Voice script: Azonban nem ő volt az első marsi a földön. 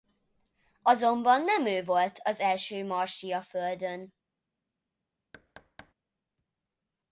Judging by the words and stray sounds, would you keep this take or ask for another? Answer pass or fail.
fail